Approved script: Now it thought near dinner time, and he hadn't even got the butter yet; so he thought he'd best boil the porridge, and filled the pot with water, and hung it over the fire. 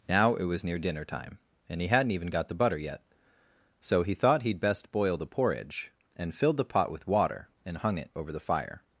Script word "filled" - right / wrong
right